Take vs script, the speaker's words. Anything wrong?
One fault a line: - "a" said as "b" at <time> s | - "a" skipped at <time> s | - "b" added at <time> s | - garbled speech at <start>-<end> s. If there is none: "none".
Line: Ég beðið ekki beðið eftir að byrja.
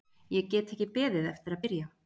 - "beðið" said as "get" at 0.5 s